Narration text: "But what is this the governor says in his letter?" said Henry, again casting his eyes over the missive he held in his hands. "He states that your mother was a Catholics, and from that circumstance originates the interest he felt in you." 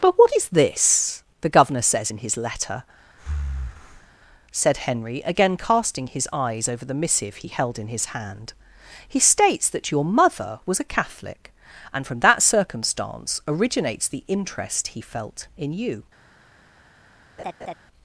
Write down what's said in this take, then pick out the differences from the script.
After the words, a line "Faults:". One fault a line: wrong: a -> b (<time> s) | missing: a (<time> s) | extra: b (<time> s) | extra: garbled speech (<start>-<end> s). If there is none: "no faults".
"But what is this the governor says in his letter?" said Henry, again casting his eyes over the missive he held in his hand. "He states that your mother was a Catholic, and from that circumstance originates the interest he felt in you."
Faults:
wrong: hands -> hand (8.1 s)
wrong: Catholics -> Catholic (10.9 s)